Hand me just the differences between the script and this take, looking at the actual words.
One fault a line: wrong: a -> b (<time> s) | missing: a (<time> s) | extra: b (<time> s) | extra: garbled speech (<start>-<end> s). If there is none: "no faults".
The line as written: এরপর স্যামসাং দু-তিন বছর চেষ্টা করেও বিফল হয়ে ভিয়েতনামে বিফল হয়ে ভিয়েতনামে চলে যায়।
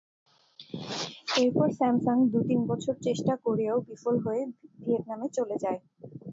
missing: বিফল হয়ে ভিয়েতনামে (5.3 s)